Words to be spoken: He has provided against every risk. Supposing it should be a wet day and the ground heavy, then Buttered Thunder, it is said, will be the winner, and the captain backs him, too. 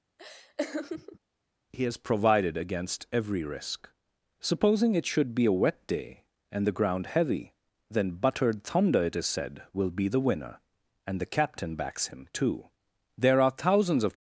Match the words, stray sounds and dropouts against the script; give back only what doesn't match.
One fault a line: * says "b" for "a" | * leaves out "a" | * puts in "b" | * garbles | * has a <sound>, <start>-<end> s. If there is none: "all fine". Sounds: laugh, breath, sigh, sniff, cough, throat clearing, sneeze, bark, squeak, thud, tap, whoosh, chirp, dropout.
* has a laugh, 0.2-1.2 s
* puts in "There are thousands of"